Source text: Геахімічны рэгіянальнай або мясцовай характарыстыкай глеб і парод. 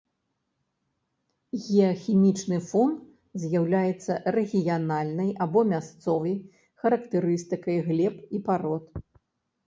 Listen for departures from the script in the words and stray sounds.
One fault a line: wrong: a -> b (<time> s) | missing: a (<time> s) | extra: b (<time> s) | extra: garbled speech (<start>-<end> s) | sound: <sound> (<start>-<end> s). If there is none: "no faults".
extra: фон з'яўляецца (2.7 s)